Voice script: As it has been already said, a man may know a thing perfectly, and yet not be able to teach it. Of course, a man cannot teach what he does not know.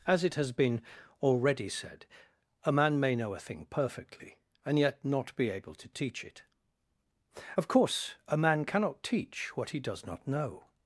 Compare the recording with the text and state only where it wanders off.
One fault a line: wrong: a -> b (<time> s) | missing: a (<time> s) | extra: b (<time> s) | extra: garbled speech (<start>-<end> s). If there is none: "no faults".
no faults